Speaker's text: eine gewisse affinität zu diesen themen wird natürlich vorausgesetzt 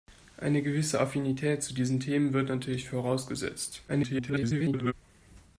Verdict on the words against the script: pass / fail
fail